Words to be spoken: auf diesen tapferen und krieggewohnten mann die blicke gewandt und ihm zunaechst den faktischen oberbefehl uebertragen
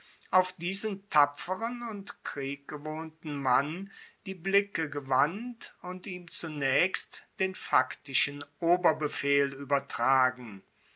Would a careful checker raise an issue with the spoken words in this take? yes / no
no